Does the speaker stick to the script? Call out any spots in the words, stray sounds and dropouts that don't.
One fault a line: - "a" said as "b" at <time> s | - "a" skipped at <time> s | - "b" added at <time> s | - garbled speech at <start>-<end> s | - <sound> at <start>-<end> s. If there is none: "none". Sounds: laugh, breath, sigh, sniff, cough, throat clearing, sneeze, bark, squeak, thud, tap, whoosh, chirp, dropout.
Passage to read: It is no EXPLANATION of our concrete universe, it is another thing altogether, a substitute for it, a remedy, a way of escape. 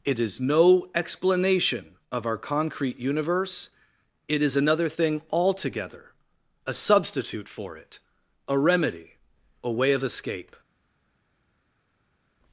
none